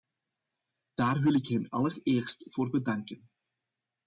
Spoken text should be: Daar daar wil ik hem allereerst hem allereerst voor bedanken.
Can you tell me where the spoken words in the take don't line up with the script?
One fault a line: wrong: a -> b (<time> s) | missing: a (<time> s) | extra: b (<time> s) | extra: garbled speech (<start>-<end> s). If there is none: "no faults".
missing: daar (1.2 s)
missing: hem allereerst (2.5 s)